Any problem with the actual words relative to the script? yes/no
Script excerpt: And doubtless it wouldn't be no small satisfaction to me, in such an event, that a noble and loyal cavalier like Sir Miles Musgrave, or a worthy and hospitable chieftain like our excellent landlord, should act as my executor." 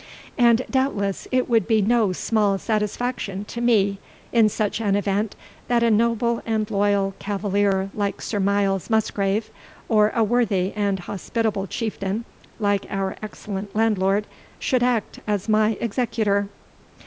yes